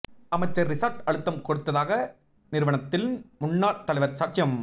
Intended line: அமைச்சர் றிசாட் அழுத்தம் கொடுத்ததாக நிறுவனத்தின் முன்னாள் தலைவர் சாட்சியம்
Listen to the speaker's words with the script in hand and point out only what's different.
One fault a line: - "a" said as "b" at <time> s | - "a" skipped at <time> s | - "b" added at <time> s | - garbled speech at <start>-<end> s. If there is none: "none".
none